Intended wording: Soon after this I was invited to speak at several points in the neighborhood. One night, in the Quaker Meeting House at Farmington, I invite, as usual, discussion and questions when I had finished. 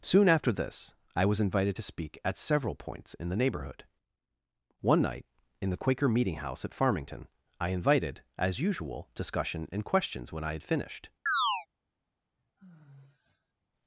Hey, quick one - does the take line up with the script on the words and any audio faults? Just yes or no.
no